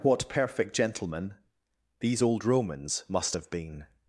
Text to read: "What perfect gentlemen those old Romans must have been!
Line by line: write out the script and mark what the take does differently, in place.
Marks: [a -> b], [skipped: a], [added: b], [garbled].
"What perfect gentlemen [those -> these] old Romans must have been!